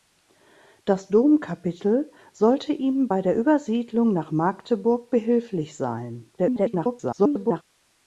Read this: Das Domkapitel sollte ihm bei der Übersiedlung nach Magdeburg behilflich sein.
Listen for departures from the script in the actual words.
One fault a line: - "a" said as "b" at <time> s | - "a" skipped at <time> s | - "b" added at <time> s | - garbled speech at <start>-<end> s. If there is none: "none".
- garbled speech at 6.4-7.6 s